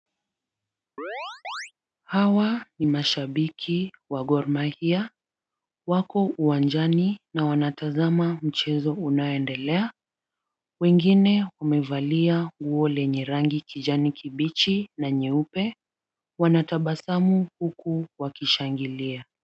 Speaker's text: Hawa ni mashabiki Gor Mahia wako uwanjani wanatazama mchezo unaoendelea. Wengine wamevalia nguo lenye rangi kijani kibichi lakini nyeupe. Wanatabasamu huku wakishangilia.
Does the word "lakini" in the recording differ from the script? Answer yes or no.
yes